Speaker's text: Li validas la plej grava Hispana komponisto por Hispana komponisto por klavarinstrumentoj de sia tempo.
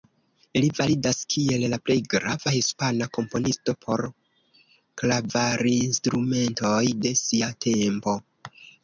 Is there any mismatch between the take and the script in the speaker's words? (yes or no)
yes